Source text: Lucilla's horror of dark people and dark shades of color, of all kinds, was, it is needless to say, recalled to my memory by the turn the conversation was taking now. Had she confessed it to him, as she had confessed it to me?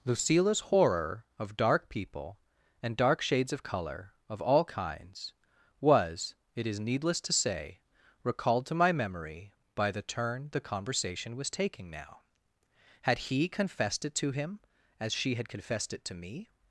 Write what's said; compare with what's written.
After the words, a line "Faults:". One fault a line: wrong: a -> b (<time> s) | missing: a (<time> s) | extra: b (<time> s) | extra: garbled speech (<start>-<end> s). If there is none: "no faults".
Lucilla's horror of dark people and dark shades of color, of all kinds, was, it is needless to say, recalled to my memory by the turn the conversation was taking now. Had he confessed it to him, as she had confessed it to me?
Faults:
wrong: she -> he (13.2 s)